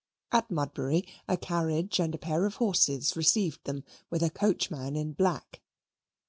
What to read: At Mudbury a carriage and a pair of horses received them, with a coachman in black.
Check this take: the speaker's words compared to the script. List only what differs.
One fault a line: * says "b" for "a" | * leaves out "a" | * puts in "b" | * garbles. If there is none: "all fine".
all fine